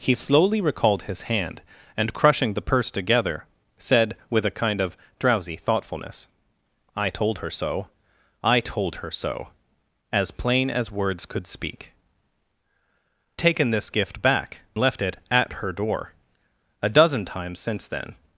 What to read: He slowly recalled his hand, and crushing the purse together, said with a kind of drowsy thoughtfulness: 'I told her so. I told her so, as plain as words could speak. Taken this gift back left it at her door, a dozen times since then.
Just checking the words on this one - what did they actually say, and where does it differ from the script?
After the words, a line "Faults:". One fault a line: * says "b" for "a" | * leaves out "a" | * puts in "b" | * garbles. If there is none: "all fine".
He slowly recalled his hand, and crushing the purse together, said with a kind of drowsy thoughtfulness: 'I told her so. I told her so, as plain as words could speak. Taken this gift back left it at her door, a dozen times since then.
Faults:
all fine